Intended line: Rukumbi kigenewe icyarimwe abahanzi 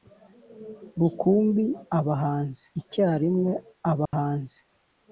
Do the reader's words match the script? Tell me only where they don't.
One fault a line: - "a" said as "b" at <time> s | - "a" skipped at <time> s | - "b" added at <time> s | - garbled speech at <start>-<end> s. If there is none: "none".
- "kigenewe" said as "abahanzi" at 2.0 s